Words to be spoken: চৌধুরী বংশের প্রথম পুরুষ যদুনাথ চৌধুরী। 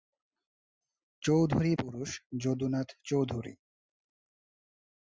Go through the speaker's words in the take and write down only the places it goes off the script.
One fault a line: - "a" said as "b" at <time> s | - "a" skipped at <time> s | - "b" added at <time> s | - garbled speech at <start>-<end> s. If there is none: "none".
- "বংশের প্রথম" skipped at 1.7 s